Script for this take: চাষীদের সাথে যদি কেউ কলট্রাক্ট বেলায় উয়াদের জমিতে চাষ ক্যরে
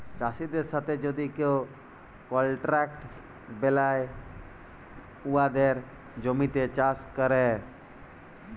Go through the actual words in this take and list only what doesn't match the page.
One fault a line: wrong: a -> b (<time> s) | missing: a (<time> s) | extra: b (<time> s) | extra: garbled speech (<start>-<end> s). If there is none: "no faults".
no faults